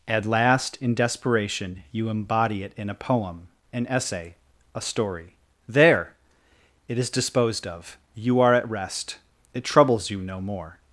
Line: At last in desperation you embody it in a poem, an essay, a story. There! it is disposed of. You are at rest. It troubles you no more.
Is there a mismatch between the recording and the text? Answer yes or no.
no